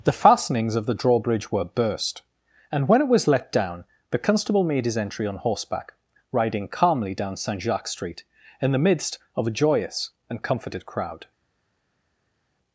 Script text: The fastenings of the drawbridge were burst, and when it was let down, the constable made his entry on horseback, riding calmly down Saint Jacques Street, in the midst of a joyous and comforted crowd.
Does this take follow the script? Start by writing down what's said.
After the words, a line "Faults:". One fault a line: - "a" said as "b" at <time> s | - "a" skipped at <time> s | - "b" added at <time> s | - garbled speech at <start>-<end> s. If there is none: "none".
The fastenings of the drawbridge were burst, and when it was let down, the constable made his entry on horseback, riding calmly down Saint Jacques Street, in the midst of a joyous and comforted crowd.
Faults:
none